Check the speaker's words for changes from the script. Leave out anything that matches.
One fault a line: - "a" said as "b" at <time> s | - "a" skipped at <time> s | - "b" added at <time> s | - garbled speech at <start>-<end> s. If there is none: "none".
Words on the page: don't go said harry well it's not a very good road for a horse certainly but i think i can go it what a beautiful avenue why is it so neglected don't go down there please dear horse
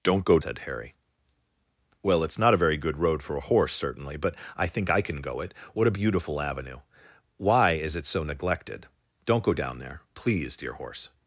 none